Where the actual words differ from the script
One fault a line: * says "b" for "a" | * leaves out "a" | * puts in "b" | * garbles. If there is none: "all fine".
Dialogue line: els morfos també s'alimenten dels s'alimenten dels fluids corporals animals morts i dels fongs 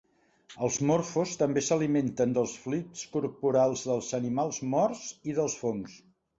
* leaves out "s'alimenten dels"
* puts in "dels"